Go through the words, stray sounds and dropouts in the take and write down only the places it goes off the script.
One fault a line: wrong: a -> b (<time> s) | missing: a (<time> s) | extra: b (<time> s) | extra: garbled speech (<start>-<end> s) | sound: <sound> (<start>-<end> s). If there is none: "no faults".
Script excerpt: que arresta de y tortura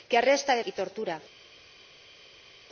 no faults